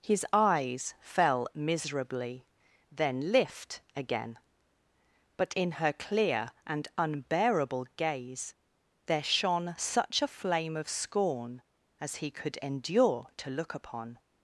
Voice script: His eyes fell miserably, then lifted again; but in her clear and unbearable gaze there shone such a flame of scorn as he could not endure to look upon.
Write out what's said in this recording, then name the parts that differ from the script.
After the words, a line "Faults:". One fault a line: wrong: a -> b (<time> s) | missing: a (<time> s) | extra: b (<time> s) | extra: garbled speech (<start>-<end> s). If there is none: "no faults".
His eyes fell miserably, then lift again; but in her clear and unbearable gaze there shone such a flame of scorn as he could endure to look upon.
Faults:
wrong: lifted -> lift (3.3 s)
missing: not (12.6 s)